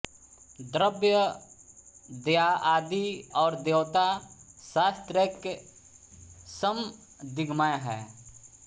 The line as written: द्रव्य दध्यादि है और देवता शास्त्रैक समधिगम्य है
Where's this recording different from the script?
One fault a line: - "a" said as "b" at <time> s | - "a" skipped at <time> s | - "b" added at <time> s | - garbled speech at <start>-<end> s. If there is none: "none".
- "है" skipped at 3.0 s